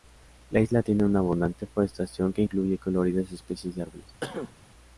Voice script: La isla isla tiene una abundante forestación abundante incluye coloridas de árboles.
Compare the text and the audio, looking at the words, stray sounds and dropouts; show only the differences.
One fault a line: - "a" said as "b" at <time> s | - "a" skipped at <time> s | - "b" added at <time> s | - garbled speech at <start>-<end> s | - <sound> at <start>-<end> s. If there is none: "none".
- "isla" skipped at 0.8 s
- "abundante" said as "que" at 2.3 s
- "especies" added at 3.3 s
- cough at 4.2-4.5 s